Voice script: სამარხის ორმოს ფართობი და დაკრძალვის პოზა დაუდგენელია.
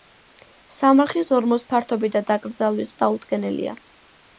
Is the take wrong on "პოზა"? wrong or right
wrong